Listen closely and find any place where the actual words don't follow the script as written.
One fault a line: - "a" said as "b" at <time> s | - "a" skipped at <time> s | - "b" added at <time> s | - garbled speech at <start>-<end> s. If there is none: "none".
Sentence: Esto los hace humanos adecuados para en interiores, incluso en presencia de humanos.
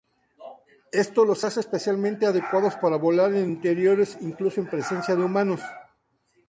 - "humanos" said as "especialmente" at 1.6 s
- "volar" added at 3.0 s